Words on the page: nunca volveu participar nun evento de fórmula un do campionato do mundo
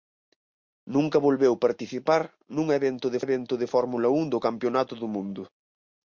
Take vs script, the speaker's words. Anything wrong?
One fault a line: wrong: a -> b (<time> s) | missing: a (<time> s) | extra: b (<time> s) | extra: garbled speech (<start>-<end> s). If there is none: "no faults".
extra: evento de (3.3 s)